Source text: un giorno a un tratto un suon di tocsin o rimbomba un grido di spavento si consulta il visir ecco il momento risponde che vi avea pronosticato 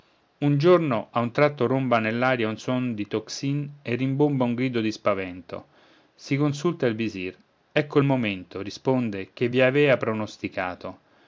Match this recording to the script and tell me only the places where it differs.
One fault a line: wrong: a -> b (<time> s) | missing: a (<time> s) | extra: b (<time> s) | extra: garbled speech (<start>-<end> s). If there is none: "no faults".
extra: romba nell'aria (1.7 s)
wrong: o -> e (3.8 s)